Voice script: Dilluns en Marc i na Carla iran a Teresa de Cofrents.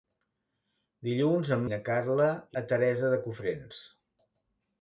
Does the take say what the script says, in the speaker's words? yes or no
no